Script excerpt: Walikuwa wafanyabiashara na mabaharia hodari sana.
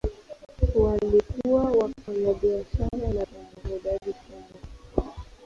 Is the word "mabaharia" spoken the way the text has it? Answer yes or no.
no